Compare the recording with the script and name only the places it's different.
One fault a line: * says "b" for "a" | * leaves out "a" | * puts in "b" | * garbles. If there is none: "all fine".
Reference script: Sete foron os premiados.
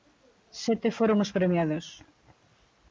all fine